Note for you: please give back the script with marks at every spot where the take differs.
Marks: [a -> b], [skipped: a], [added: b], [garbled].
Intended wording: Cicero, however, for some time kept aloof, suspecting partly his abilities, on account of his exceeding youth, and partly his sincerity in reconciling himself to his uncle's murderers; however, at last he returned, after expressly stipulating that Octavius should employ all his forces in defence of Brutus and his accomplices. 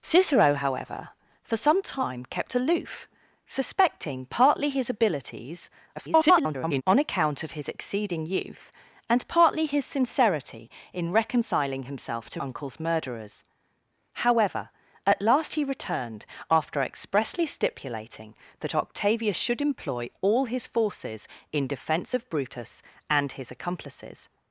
Cicero, however, for some time kept aloof, suspecting partly his abilities, [garbled] on account of his exceeding youth, and partly his sincerity in reconciling himself to [skipped: his] uncle's murderers; however, at last he returned, after expressly stipulating that Octavius should employ all his forces in defence of Brutus and his accomplices.